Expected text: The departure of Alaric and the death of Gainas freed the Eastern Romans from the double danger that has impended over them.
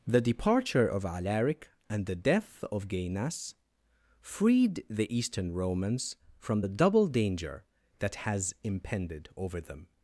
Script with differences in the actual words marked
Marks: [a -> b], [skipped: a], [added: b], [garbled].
The departure of Alaric and the death of Gainas freed the Eastern Romans from the double danger that has impended over them.